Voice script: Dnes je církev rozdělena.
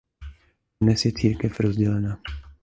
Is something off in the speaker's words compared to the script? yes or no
no